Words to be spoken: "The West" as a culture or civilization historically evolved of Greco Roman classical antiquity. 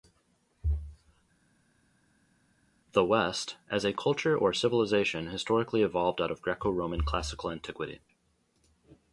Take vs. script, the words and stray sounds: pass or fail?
fail